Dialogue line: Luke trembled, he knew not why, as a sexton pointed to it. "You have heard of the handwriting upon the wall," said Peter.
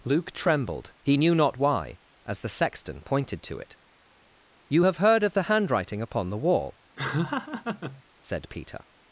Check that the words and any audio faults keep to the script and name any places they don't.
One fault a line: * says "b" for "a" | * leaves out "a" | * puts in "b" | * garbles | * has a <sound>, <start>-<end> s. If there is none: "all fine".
* says "the" for "a"
* has a laugh, 7.0-8.0 s